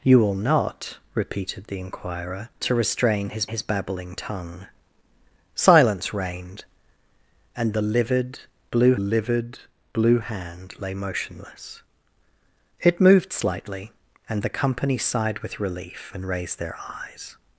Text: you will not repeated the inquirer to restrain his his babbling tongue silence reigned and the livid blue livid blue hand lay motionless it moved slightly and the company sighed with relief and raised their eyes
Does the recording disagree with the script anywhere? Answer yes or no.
no